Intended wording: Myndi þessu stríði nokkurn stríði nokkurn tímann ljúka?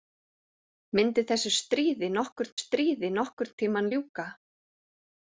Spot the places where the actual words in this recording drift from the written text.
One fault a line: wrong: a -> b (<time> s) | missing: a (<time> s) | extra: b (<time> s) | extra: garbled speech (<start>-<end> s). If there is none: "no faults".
no faults